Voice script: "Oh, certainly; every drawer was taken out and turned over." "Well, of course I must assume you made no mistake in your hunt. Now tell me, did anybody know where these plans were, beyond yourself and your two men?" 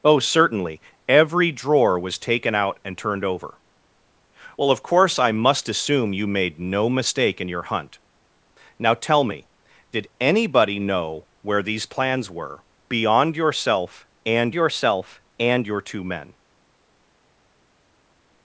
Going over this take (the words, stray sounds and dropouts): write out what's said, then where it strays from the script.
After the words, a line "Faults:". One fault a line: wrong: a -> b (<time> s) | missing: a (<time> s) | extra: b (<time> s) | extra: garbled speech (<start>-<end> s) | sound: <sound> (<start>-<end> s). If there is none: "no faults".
"Oh, certainly; every drawer was taken out and turned over." "Well, of course I must assume you made no mistake in your hunt. Now tell me, did anybody know where these plans were, beyond yourself and yourself and your two men?"
Faults:
extra: yourself and (14.5 s)